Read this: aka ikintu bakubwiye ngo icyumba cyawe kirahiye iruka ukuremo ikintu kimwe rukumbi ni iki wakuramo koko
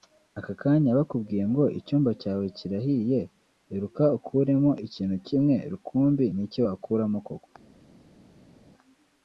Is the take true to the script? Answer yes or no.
no